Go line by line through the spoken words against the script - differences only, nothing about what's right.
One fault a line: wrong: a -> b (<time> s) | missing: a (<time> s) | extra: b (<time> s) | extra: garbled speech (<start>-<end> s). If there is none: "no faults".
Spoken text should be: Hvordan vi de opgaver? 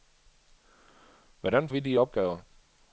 no faults